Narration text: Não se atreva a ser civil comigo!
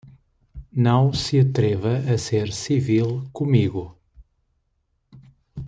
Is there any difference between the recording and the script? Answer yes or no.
no